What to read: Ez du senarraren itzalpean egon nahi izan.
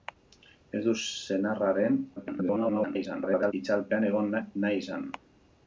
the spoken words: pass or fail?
fail